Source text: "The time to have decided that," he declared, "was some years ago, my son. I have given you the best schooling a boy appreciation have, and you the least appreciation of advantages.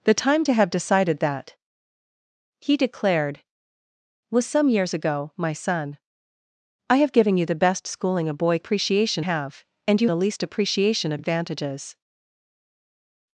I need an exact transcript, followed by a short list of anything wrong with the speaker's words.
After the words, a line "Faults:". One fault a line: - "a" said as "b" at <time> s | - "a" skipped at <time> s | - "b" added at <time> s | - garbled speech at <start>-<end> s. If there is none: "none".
"The time to have decided that," he declared, "was some years ago, my son. I have given you the best schooling a boy appreciation have, and you the least appreciation of advantages.
Faults:
none